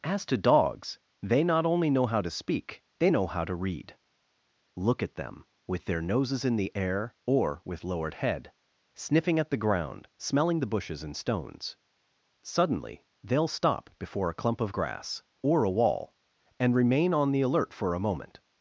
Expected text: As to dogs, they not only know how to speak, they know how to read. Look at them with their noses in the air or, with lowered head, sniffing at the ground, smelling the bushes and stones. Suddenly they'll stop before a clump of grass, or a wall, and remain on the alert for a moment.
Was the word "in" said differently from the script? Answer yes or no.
no